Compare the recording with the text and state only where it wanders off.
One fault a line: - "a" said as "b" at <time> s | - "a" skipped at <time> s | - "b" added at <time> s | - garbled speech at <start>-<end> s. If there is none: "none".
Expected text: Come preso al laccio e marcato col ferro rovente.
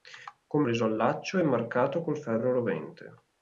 none